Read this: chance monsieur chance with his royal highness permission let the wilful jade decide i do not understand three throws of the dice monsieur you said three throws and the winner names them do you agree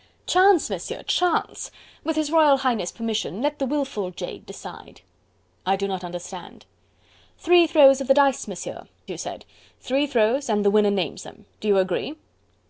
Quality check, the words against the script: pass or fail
pass